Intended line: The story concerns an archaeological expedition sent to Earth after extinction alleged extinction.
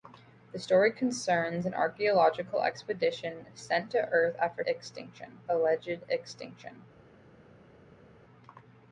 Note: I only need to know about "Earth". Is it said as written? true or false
true